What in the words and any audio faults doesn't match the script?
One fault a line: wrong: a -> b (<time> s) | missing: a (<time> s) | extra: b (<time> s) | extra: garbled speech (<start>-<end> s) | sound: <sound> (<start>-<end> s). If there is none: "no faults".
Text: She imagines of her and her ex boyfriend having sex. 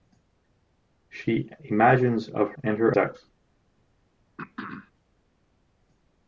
missing: her (2.5 s)
missing: ex boyfriend having (3.0 s)
sound: throat clearing (4.4-4.9 s)